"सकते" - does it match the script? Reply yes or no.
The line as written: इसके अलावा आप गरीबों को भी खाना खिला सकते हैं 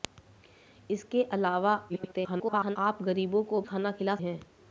no